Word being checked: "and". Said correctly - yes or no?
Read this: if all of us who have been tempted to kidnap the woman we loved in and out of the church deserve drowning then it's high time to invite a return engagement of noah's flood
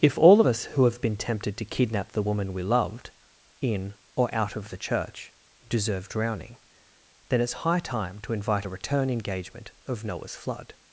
no